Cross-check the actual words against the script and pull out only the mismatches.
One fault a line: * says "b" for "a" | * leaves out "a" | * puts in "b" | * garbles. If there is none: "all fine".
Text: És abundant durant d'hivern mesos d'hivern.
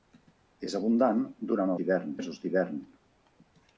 all fine